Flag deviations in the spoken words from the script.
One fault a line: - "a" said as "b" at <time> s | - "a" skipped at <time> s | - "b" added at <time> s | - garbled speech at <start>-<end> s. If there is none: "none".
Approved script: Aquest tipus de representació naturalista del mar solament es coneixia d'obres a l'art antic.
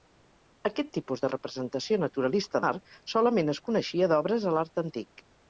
- "del" skipped at 2.6 s